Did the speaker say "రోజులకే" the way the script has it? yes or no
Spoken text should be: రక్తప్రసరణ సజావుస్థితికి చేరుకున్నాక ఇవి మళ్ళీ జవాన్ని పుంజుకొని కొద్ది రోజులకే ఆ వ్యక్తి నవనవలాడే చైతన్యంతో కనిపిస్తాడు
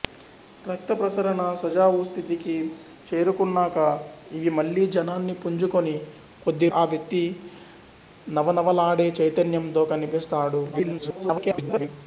no